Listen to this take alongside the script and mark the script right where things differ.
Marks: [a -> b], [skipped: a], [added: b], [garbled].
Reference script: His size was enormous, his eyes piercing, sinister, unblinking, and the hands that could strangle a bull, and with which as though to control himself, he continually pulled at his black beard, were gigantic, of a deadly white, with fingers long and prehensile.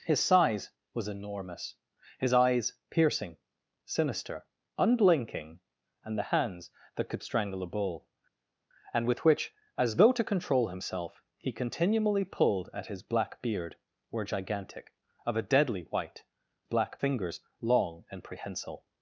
His size was enormous, his eyes piercing, sinister, unblinking, and the hands that could strangle a bull, and with which as though to control himself, he continually pulled at his black beard, were gigantic, of a deadly white, [with -> black] fingers long and prehensile.